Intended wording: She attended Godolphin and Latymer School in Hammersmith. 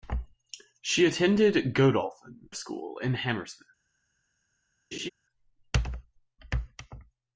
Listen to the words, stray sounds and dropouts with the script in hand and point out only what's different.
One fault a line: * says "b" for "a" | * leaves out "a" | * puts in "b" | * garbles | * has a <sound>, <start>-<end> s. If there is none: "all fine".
* leaves out "and Latymer"
* has a laugh, 4.9-5.1 s